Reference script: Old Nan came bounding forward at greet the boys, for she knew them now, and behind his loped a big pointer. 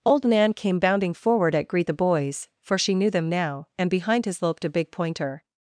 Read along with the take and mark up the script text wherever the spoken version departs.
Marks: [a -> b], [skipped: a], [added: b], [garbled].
Old Nan came bounding forward at greet the boys, for she knew them now, and behind his loped a big pointer.